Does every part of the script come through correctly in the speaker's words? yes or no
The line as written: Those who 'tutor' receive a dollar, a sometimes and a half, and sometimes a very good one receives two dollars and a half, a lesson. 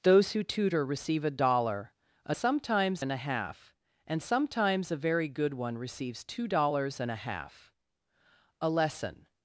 yes